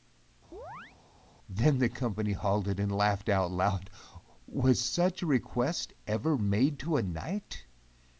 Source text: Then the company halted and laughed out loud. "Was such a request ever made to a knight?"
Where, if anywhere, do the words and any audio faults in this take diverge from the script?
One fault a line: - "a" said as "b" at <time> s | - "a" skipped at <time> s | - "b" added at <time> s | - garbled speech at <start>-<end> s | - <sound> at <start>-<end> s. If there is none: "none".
- chirp at 0.5-1.0 s